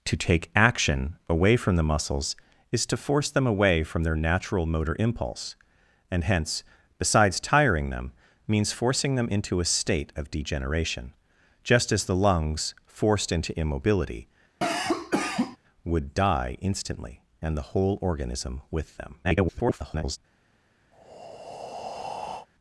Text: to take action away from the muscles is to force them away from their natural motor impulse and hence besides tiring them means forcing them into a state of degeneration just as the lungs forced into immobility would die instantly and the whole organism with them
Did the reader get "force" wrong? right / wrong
right